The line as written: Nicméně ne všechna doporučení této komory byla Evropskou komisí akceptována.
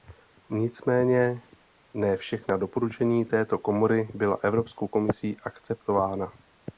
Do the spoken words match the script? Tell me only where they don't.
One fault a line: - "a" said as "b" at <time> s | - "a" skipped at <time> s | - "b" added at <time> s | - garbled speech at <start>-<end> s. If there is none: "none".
none